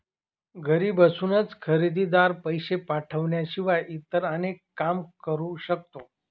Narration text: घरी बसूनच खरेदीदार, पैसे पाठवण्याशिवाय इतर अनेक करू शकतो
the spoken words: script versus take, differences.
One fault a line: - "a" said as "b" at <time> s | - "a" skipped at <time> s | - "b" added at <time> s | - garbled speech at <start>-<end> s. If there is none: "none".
- "काम" added at 4.8 s